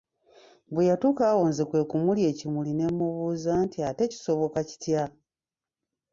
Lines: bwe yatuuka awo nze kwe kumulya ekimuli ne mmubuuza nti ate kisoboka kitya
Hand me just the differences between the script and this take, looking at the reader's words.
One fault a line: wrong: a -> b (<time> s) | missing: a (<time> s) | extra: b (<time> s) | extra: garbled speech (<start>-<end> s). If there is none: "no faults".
no faults